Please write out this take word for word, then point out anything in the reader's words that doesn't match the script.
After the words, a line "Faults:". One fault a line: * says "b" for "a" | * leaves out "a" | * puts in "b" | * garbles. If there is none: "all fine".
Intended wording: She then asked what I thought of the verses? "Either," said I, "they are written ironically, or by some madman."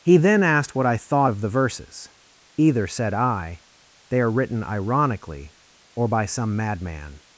He then asked what I thought of the verses? "Either," said I, "they are written ironically, or by some madman."
Faults:
* says "He" for "She"